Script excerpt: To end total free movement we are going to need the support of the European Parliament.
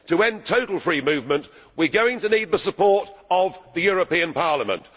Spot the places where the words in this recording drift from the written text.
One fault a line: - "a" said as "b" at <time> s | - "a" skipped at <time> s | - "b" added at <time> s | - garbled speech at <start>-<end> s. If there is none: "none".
none